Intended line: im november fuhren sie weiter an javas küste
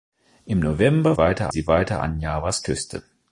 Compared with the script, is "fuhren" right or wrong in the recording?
wrong